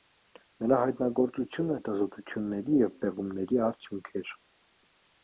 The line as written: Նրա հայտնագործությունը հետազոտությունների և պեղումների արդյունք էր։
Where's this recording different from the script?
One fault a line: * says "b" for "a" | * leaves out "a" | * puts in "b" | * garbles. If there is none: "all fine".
all fine